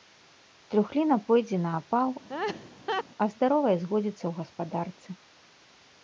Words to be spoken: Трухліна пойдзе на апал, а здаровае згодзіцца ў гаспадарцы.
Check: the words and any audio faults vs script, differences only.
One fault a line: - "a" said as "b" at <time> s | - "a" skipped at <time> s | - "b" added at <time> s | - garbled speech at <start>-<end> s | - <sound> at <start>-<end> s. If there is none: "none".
- laugh at 2.3-3.0 s